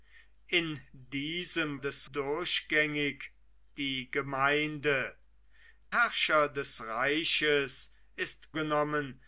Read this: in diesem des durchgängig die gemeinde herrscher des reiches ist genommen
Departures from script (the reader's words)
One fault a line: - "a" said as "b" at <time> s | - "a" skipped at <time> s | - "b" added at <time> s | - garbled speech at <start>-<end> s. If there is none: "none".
none